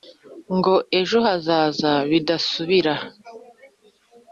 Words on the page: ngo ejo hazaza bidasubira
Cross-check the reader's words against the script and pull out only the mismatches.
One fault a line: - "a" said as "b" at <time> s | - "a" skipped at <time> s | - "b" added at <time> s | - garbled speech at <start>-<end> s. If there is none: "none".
none